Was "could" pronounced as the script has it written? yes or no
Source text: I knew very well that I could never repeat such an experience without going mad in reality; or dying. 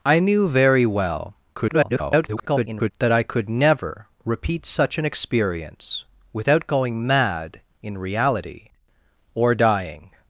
yes